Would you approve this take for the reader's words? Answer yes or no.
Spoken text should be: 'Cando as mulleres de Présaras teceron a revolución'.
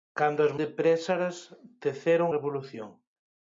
no